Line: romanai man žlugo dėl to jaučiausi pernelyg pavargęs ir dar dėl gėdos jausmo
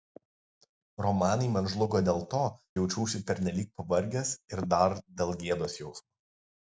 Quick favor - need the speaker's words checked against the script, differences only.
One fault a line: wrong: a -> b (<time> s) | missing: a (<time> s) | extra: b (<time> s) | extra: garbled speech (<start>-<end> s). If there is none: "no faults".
no faults